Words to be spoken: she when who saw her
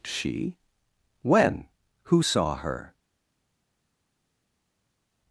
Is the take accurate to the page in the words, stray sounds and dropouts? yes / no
yes